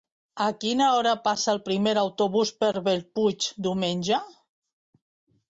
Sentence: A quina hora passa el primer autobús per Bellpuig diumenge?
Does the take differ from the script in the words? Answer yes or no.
no